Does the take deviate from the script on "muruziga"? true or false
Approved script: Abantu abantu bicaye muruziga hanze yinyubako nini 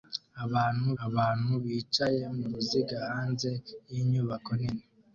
false